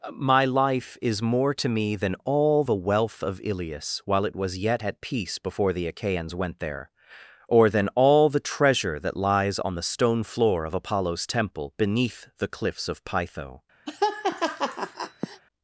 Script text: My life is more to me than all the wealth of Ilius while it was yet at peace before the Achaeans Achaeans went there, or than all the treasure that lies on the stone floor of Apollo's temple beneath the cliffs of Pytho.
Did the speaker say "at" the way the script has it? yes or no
yes